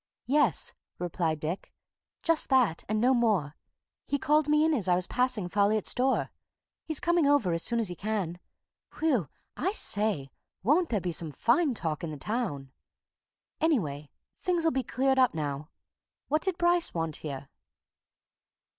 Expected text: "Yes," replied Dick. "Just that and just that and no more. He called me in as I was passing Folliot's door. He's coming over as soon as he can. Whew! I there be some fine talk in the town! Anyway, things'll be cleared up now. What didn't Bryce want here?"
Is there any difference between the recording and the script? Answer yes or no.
yes